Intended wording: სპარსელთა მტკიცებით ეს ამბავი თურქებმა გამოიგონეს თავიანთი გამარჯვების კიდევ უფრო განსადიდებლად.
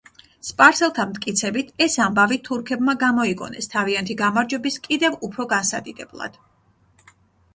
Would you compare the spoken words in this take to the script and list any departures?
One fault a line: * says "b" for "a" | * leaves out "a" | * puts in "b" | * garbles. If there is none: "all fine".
all fine